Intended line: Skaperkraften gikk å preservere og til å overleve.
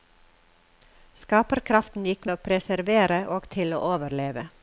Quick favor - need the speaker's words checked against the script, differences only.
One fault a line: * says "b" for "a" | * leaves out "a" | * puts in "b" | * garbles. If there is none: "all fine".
all fine